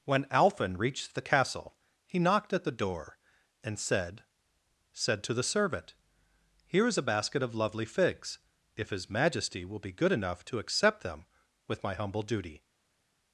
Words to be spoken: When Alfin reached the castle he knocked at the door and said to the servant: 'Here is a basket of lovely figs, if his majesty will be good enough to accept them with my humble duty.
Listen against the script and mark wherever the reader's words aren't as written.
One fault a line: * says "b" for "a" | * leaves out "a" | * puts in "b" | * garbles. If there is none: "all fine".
* puts in "said"